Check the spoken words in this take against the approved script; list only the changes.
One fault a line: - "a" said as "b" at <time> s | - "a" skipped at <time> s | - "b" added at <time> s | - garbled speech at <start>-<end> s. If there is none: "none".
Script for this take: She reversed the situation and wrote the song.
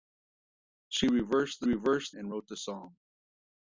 - "situation" said as "reversed" at 1.6 s